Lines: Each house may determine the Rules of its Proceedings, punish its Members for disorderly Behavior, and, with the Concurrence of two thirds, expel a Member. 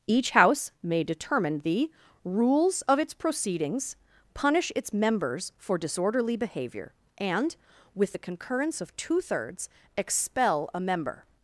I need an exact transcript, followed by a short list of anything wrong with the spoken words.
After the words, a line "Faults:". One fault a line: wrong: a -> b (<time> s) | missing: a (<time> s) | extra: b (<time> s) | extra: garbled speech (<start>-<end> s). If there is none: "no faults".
Each house may determine the Rules of its Proceedings, punish its Members for disorderly Behavior, and, with the Concurrence of two thirds, expel a Member.
Faults:
no faults